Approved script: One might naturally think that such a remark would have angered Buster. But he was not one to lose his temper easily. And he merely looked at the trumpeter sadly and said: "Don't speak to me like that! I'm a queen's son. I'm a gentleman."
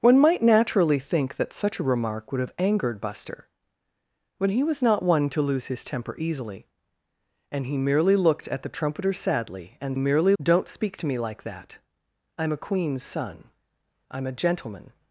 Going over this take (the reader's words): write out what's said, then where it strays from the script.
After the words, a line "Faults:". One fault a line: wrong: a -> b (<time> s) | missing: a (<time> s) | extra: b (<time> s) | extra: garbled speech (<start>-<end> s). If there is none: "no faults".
One might naturally think that such a remark would have angered Buster. But he was not one to lose his temper easily. And he merely looked at the trumpeter sadly and merely: "Don't speak to me like that! I'm a queen's son. I'm a gentleman."
Faults:
wrong: said -> merely (10.0 s)